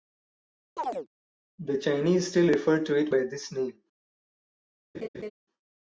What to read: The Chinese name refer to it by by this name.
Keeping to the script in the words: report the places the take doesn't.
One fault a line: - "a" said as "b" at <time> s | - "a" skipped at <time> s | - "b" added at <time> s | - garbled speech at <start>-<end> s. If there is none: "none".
- "name" said as "still" at 2.3 s
- "by" skipped at 3.2 s